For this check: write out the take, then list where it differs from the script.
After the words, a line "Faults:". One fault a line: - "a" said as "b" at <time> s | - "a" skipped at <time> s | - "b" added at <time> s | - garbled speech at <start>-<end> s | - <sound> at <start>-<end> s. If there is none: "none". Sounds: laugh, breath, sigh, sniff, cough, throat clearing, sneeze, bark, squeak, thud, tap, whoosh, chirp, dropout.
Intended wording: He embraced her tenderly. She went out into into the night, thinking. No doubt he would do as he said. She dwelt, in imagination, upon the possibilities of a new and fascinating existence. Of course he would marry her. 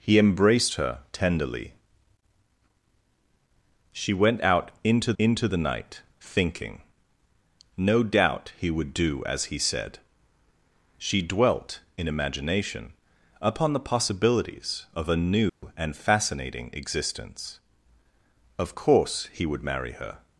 He embraced her tenderly. She went out into into the night, thinking. No doubt he would do as he said. She dwelt, in imagination, upon the possibilities of a new and fascinating existence. Of course he would marry her.
Faults:
- dropout at 15.5-15.6 s